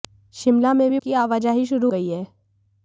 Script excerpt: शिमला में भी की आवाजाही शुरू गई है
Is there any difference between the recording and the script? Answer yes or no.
no